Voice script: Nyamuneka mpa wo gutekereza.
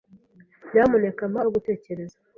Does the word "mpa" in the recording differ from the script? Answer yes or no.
no